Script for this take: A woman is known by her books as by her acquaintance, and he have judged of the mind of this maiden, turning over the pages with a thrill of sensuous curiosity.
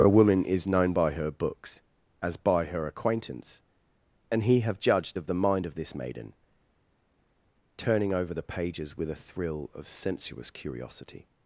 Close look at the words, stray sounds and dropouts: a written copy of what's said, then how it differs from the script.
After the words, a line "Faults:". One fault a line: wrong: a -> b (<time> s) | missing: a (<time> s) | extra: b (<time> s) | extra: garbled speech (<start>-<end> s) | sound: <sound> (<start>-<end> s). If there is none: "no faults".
A woman is known by her books as by her acquaintance, and he have judged of the mind of this maiden, turning over the pages with a thrill of sensuous curiosity.
Faults:
no faults